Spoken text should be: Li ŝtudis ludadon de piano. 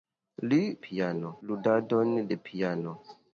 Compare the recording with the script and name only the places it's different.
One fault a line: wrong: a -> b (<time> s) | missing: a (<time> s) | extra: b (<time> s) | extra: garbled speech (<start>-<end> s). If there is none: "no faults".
wrong: ŝtudis -> piano (0.9 s)